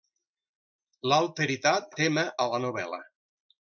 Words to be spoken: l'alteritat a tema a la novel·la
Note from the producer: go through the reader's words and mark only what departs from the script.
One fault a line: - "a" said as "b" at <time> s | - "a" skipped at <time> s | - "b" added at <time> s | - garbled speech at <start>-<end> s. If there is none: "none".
none